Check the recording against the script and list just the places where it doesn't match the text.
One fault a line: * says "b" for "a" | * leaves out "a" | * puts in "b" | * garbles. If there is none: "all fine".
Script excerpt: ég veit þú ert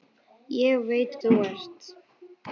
all fine